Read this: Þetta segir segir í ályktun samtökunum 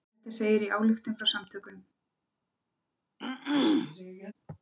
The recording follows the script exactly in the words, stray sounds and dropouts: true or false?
false